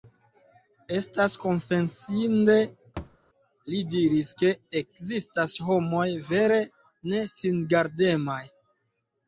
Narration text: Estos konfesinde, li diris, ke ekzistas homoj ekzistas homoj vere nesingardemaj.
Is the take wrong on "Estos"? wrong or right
wrong